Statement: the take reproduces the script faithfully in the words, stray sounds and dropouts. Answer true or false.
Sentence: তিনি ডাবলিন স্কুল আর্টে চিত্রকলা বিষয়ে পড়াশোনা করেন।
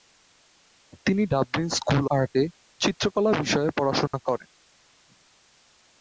false